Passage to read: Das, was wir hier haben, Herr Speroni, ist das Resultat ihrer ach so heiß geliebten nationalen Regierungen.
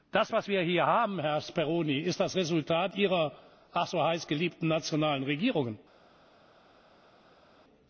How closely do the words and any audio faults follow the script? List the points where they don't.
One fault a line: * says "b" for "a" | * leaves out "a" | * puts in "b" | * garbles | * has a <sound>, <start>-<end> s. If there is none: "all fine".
all fine